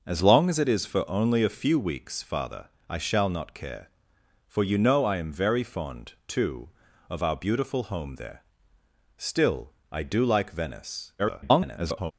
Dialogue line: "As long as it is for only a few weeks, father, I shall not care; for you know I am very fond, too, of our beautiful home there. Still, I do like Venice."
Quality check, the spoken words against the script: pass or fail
fail